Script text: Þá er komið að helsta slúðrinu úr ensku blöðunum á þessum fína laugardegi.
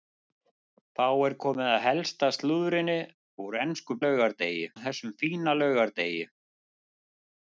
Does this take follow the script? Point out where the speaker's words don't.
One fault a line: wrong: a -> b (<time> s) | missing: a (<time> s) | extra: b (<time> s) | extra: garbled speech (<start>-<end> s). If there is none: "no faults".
wrong: blöðunum -> laugardegi (4.0 s)